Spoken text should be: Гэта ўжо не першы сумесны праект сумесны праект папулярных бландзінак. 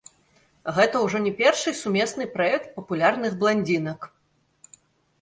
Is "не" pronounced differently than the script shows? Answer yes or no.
no